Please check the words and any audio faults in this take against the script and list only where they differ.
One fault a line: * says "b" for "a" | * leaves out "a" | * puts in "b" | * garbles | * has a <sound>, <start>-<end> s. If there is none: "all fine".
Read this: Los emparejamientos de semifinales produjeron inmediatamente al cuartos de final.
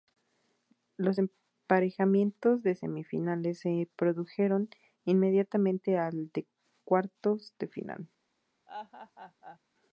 * puts in "se"
* puts in "de"
* has a laugh, 8.7-9.6 s